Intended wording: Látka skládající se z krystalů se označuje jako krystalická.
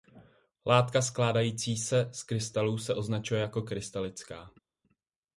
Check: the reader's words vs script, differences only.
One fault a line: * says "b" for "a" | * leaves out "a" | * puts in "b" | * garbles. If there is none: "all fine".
all fine